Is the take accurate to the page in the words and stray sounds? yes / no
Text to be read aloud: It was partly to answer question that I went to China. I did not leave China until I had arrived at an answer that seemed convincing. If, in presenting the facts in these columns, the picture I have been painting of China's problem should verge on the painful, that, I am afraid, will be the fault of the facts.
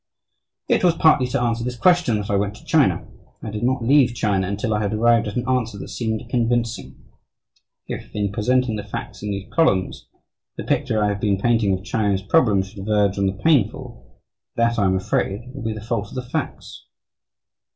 no